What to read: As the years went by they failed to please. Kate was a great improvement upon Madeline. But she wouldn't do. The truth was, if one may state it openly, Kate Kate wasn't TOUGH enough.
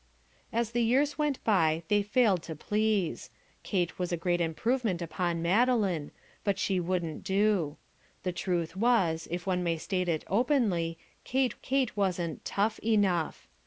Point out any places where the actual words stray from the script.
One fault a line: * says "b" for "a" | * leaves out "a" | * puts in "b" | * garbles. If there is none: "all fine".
all fine